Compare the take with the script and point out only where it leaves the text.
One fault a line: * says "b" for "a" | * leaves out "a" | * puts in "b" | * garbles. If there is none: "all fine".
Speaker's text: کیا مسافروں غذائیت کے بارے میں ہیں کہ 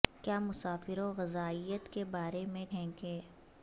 all fine